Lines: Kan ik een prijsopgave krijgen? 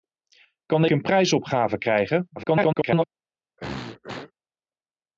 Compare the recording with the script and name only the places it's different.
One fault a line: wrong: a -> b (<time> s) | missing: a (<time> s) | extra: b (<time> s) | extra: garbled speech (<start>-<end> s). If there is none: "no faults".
missing: ik (0.8 s)
extra: garbled speech (2.4-3.0 s)